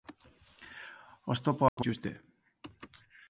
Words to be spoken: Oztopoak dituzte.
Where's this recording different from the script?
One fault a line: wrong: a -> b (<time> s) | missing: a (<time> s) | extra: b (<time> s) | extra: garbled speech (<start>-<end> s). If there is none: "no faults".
no faults